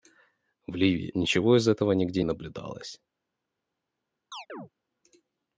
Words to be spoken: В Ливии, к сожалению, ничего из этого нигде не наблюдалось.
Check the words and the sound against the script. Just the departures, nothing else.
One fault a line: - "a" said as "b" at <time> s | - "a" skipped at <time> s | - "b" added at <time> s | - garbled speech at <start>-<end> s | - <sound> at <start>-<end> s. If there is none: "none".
- "к сожалению" skipped at 1.1 s
- "не" skipped at 2.2 s
- chirp at 4.3-4.7 s